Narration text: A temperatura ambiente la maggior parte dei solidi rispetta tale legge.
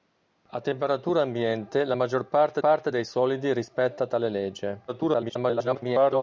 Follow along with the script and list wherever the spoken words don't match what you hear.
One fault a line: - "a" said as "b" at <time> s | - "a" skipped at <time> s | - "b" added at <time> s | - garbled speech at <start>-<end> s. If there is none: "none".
- "parte" added at 2.6 s
- garbled speech at 4.9-6.2 s